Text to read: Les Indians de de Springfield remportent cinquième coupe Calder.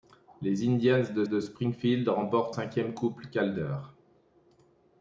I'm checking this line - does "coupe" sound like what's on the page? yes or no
yes